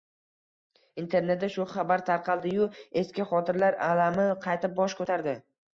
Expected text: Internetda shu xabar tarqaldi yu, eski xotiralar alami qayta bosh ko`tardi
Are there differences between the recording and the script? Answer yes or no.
no